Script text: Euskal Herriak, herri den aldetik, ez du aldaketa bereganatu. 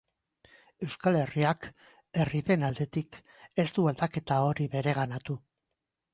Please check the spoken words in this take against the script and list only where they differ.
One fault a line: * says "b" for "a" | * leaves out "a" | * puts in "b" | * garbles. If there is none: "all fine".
* puts in "hori"